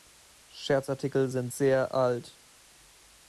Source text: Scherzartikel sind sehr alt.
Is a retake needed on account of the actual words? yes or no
no